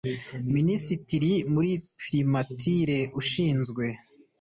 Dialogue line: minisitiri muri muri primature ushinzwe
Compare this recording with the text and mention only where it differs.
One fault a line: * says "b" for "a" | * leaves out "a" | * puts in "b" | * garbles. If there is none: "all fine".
* leaves out "muri"